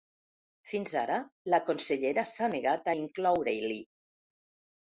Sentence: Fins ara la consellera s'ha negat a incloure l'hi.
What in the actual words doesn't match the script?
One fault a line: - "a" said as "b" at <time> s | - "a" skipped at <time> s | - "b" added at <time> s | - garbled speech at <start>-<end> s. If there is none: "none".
none